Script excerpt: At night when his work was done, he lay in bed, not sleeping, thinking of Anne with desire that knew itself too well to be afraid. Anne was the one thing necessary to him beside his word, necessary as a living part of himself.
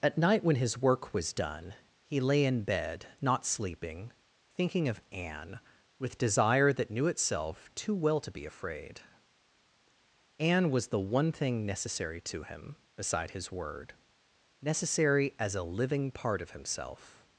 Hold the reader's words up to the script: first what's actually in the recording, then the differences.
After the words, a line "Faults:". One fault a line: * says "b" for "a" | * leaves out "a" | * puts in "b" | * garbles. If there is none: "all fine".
At night when his work was done, he lay in bed, not sleeping, thinking of Anne with desire that knew itself too well to be afraid. Anne was the one thing necessary to him beside his word, necessary as a living part of himself.
Faults:
all fine